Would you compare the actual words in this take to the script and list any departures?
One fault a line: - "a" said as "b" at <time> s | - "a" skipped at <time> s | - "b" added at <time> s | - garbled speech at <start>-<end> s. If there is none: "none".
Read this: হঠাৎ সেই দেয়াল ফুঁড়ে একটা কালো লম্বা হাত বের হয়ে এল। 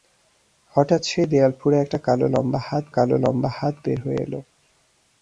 - "কালো লম্বা হাত" added at 2.9 s